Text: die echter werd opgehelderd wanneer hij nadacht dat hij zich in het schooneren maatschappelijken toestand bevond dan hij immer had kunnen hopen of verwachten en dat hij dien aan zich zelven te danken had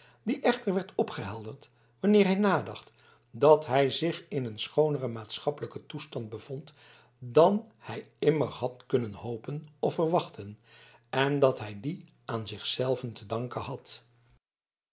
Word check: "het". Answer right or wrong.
wrong